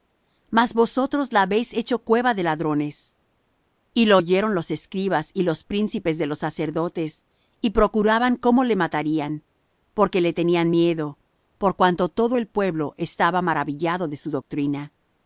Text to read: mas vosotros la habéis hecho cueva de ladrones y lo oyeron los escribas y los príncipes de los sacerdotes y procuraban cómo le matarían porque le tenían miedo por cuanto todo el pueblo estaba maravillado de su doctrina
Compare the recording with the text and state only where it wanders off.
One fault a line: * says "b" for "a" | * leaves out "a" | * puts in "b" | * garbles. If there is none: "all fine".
all fine